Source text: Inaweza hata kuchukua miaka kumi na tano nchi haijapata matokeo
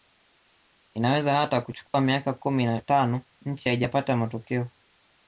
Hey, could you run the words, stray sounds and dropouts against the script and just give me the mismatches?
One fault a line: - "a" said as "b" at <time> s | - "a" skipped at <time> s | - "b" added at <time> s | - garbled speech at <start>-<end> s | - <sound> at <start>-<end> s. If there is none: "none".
- dropout at 1.9-1.9 s